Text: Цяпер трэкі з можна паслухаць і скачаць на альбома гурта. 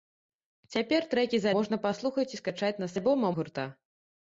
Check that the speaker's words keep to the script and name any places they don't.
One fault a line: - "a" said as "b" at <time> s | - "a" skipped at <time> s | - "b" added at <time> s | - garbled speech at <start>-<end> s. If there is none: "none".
none